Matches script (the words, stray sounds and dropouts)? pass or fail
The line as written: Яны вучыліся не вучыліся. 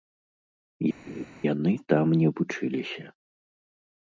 fail